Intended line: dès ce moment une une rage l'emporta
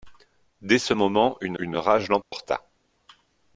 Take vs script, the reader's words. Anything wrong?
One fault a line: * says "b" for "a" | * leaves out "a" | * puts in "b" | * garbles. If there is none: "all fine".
all fine